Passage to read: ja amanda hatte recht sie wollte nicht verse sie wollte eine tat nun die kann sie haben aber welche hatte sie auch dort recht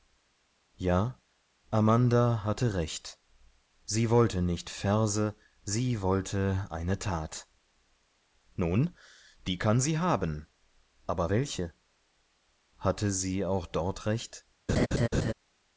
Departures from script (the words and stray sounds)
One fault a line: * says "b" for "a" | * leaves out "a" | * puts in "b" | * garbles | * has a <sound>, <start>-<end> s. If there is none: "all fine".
* has a laugh, 14.7-15.3 s